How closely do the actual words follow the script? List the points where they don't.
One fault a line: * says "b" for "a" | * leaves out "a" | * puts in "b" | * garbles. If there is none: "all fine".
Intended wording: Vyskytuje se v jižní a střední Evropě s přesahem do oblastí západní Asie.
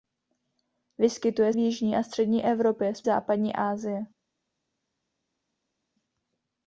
* leaves out "se"
* leaves out "přesahem do oblastí"